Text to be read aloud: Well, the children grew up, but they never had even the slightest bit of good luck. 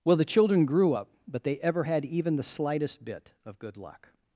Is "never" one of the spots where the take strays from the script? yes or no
yes